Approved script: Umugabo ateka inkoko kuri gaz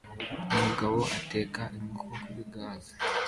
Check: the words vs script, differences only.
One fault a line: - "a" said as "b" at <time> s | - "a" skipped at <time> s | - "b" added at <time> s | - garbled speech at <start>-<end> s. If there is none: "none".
none